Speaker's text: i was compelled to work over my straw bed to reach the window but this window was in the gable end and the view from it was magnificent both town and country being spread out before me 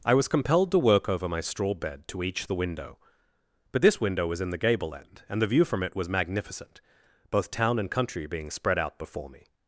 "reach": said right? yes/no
no